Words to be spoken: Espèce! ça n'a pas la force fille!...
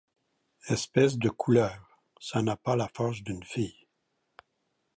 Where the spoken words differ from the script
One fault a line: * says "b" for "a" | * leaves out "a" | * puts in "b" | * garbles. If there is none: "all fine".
* puts in "de couleuvre"
* puts in "d'une"